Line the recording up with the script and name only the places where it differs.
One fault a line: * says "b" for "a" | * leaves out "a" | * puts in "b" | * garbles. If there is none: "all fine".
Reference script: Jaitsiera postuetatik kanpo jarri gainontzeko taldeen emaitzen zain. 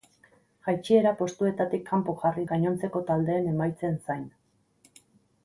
all fine